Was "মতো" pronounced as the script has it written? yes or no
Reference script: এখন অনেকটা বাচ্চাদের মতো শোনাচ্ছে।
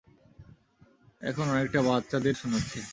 no